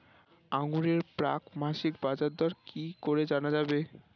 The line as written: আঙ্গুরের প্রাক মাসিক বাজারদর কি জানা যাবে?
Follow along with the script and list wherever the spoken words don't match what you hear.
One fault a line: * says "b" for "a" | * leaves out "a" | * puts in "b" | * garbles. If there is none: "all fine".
* puts in "করে"